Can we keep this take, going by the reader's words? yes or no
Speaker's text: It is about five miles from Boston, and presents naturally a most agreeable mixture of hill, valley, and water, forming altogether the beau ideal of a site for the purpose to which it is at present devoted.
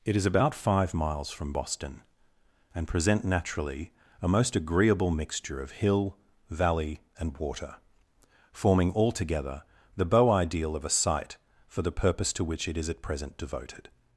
no